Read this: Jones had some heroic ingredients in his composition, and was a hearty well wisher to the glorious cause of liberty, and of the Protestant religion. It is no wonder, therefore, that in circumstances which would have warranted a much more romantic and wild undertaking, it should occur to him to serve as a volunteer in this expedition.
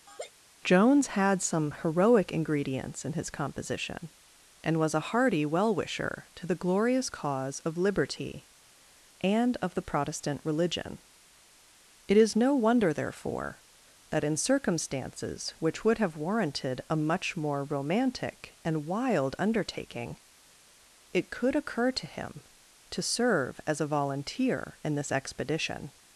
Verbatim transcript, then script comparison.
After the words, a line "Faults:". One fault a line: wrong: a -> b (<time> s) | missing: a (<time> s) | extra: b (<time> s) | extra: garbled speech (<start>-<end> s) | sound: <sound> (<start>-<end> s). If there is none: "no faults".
Jones had some heroic ingredients in his composition, and was a hearty well wisher to the glorious cause of liberty, and of the Protestant religion. It is no wonder, therefore, that in circumstances which would have warranted a much more romantic and wild undertaking, it could occur to him to serve as a volunteer in this expedition.
Faults:
sound: laugh (0.1-0.3 s)
wrong: should -> could (21.3 s)